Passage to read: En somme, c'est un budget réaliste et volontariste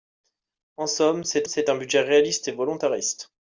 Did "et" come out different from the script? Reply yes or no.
no